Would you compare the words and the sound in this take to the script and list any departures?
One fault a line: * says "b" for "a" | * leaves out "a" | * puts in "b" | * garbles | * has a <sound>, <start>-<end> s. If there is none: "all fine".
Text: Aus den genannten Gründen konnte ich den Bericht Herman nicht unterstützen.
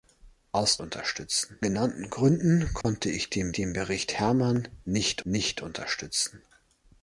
* says "unterstützen" for "den"
* has a dropout, 2.8-2.8 s
* puts in "den"
* puts in "nicht"